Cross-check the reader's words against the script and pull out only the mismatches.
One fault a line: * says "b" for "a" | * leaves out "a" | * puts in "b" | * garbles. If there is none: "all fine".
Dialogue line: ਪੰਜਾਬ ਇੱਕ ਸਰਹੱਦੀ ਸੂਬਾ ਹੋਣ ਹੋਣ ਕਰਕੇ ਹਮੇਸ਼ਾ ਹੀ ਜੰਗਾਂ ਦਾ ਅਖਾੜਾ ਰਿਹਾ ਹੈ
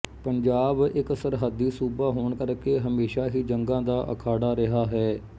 * leaves out "ਹੋਣ"